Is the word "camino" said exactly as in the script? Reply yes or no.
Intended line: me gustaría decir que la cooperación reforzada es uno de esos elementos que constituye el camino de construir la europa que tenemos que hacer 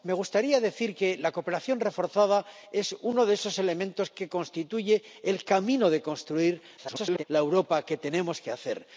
yes